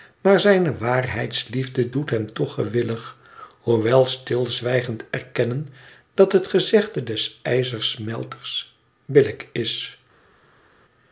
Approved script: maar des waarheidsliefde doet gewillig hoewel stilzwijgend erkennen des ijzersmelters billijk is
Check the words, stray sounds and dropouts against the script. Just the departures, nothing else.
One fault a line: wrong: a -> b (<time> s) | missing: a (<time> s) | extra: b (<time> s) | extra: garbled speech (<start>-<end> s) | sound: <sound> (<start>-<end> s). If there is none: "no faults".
wrong: des -> zijne (0.4 s)
extra: hem toch (2.1 s)
extra: dat het gezegde (6.1 s)